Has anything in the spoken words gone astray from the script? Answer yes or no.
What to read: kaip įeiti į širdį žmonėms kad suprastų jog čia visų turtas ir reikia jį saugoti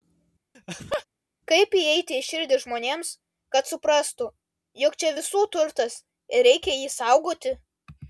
no